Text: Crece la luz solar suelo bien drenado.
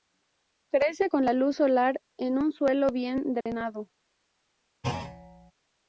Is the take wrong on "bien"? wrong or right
right